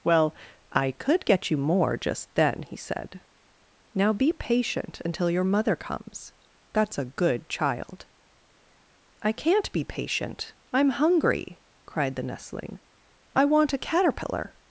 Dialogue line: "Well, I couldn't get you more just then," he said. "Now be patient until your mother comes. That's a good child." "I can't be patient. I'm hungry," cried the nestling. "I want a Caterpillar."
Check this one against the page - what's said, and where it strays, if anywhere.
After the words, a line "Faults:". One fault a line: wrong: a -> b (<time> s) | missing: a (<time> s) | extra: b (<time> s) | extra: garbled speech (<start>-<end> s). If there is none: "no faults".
"Well, I could get you more just then," he said. "Now be patient until your mother comes. That's a good child." "I can't be patient. I'm hungry," cried the nestling. "I want a Caterpillar."
Faults:
wrong: couldn't -> could (0.9 s)